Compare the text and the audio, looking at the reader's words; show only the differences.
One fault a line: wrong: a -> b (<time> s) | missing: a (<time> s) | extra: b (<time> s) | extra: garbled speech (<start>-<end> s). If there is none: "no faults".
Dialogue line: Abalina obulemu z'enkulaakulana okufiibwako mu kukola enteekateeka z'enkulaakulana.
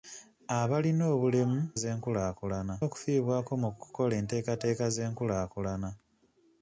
no faults